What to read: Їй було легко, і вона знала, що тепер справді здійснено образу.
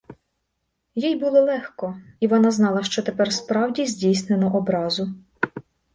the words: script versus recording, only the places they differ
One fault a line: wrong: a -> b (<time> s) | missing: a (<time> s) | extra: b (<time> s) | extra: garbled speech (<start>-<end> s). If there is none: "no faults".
no faults